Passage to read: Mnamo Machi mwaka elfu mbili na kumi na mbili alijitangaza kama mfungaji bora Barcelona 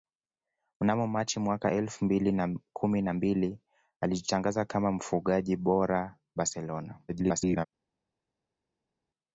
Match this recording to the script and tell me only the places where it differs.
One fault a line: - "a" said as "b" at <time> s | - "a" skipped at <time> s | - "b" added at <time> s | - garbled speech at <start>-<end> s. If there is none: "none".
- garbled speech at 7.1-7.7 s